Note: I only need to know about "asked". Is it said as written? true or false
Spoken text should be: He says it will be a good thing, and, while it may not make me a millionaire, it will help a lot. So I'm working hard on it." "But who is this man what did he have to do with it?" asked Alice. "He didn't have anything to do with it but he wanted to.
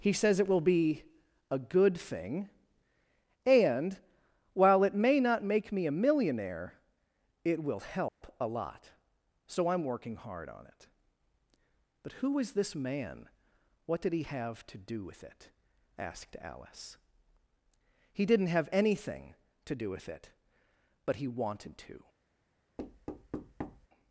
true